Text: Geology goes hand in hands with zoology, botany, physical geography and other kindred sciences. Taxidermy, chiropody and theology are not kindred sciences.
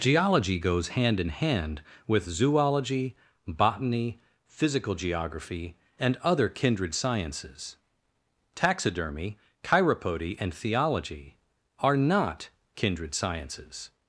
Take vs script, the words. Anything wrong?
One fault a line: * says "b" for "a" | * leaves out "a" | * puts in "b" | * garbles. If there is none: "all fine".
* says "hand" for "hands"